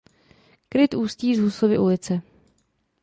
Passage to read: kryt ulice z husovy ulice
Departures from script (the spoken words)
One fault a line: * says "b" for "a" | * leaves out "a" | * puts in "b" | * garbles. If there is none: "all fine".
* says "ústí" for "ulice"